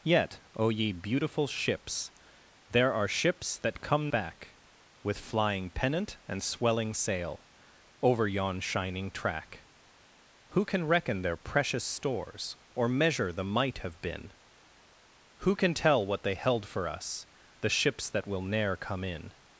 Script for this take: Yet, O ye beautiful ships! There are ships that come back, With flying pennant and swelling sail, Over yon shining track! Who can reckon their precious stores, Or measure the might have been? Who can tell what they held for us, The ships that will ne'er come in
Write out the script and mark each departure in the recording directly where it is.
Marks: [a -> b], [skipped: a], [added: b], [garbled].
Yet, O ye beautiful ships! There are ships that come back, With flying pennant and swelling sail, Over yon shining track! Who can reckon their precious stores, Or measure the might have been? Who can tell what they held for us, The ships that will ne'er come in